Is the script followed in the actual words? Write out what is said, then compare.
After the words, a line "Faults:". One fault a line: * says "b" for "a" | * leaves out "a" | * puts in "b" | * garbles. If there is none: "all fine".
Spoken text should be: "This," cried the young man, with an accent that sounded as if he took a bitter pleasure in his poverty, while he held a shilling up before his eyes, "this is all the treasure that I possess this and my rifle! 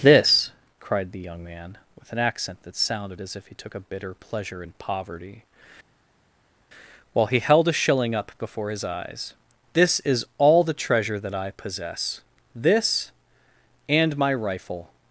"This," cried the young man, with an accent that sounded as if he took a bitter pleasure in poverty, while he held a shilling up before his eyes, "this is all the treasure that I possess this and my rifle!
Faults:
* leaves out "his"